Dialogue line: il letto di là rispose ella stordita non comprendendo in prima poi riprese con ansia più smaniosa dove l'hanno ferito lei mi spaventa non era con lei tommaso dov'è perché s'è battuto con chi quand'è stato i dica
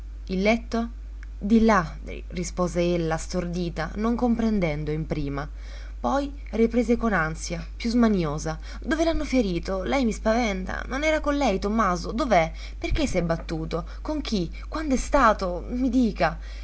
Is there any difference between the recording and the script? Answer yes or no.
no